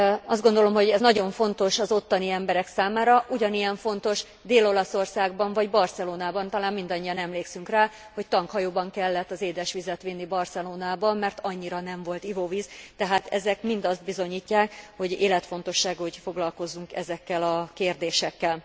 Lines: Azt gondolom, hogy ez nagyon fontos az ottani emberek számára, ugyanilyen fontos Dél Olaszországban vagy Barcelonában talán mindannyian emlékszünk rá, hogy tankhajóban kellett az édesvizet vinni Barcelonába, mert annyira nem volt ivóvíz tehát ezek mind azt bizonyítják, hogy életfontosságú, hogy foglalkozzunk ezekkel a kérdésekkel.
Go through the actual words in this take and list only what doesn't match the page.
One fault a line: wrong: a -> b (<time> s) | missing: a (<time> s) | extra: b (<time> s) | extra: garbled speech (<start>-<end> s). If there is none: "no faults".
no faults